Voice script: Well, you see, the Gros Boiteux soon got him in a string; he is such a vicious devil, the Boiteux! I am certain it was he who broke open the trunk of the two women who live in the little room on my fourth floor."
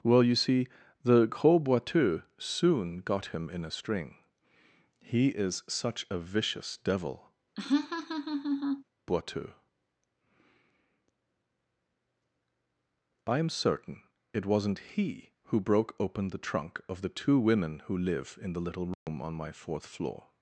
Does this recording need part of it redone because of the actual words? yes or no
yes